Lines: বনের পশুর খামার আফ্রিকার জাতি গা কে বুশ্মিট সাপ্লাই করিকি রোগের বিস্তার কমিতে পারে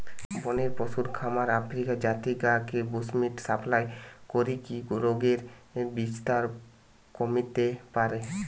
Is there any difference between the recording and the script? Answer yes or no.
no